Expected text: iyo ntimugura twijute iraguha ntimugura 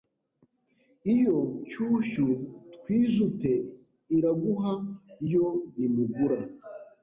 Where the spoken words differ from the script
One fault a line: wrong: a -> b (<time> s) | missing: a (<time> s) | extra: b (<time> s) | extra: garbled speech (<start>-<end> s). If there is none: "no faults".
wrong: ntimugura -> nshyushyu (1.6 s)
extra: yo (5.3 s)